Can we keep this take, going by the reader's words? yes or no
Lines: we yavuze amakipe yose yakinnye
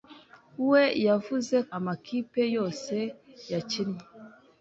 yes